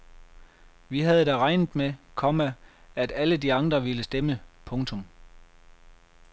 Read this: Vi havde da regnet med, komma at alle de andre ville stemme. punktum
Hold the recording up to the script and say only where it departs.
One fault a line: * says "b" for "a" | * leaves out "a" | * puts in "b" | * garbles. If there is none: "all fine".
all fine